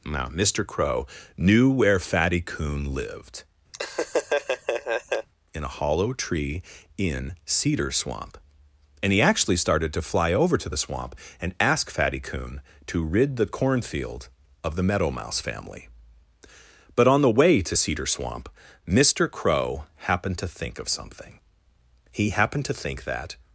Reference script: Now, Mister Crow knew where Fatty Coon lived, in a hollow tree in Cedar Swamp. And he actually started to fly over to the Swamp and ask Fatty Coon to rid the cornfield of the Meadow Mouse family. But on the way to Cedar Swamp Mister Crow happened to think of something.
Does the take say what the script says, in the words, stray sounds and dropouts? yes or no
no